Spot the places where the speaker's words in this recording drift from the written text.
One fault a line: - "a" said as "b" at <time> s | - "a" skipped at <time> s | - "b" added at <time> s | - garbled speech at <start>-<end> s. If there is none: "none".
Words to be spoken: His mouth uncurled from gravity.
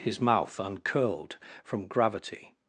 none